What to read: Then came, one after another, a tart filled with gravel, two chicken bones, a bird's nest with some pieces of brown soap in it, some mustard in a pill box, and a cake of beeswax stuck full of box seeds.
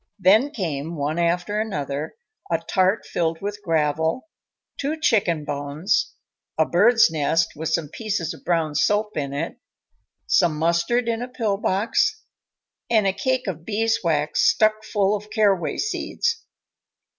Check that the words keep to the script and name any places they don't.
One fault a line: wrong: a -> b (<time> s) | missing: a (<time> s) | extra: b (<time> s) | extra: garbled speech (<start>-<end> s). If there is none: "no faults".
wrong: box -> caraway (15.3 s)